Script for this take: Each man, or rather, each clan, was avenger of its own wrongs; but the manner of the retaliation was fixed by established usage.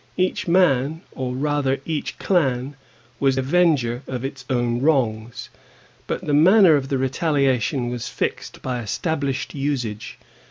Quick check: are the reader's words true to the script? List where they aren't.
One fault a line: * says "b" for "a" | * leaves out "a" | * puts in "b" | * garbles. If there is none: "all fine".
all fine